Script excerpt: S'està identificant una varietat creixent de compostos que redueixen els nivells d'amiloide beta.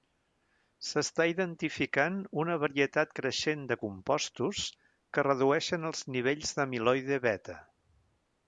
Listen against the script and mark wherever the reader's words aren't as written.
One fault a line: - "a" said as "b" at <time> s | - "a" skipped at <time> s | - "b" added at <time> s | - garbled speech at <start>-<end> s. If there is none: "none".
none